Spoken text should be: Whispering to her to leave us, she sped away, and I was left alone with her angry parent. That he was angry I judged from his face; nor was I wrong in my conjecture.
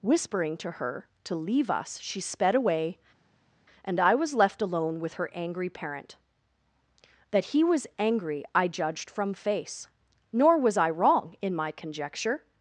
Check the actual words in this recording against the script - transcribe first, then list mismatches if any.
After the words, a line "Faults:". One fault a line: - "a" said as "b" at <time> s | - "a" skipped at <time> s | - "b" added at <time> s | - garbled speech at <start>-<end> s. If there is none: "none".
Whispering to her to leave us, she sped away, and I was left alone with her angry parent. That he was angry I judged from face; nor was I wrong in my conjecture.
Faults:
- "his" skipped at 9.3 s